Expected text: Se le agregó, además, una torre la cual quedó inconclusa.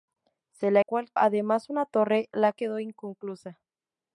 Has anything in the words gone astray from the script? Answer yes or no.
yes